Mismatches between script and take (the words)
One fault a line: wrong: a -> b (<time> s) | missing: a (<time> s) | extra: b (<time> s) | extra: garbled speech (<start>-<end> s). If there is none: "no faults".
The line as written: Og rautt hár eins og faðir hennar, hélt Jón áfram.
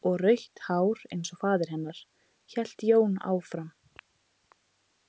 no faults